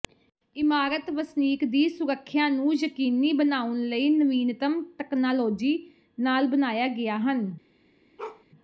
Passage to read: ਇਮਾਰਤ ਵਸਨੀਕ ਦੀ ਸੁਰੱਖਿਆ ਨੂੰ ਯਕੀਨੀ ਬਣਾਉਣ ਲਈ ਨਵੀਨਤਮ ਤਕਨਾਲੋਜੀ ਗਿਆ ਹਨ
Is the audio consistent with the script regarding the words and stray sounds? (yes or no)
no